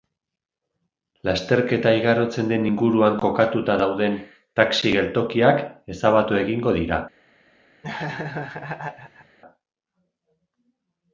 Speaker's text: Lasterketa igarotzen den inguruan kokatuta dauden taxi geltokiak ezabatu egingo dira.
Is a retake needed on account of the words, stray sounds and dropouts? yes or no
yes